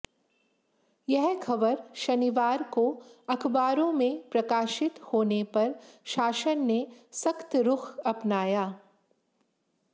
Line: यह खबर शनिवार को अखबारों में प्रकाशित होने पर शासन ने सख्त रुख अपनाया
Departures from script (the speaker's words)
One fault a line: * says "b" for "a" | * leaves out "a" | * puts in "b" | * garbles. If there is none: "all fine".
all fine